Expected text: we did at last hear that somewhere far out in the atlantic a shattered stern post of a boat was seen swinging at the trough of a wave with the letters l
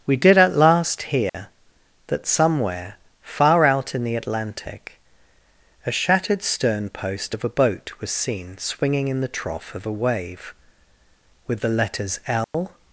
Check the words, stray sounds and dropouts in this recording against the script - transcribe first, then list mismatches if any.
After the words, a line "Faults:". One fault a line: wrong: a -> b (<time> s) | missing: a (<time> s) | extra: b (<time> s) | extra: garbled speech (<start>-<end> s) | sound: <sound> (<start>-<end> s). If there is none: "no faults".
we did at last hear that somewhere far out in the atlantic a shattered stern post of a boat was seen swinging in the trough of a wave with the letters l
Faults:
sound: dropout (1.3-1.3 s)
wrong: at -> in (9.1 s)
sound: dropout (12.4-12.5 s)